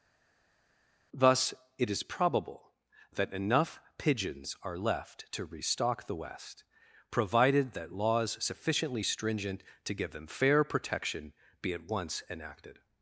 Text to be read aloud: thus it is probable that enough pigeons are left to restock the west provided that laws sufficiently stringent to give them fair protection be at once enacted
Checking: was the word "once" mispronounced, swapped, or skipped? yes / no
no